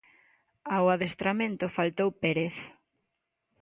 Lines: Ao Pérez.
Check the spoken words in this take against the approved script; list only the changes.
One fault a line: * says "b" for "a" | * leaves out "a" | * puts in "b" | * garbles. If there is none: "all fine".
* puts in "adestramento faltou"